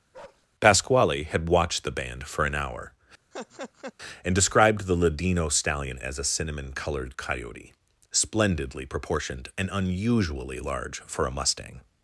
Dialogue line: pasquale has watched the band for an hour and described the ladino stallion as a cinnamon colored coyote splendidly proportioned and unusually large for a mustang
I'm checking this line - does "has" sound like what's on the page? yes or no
no